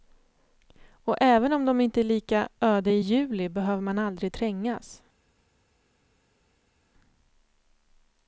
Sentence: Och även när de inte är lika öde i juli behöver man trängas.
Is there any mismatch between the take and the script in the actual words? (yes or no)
yes